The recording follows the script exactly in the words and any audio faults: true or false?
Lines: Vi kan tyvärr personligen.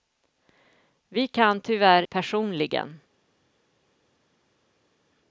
true